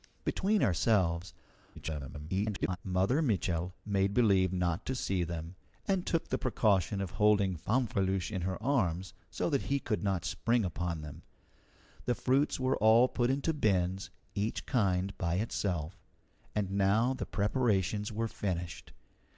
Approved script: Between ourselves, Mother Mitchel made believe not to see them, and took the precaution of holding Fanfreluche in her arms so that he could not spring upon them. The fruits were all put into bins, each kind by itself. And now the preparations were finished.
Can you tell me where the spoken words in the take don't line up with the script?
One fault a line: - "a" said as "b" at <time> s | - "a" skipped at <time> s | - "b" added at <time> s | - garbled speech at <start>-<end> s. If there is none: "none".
- garbled speech at 1.8-2.8 s